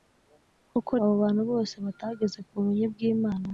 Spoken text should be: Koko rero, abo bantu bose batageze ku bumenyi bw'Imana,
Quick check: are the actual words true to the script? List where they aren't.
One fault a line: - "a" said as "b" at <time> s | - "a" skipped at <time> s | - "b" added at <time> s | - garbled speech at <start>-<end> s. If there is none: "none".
- "rero" skipped at 0.9 s